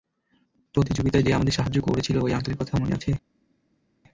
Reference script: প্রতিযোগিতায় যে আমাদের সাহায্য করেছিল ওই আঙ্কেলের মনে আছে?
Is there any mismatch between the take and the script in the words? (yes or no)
yes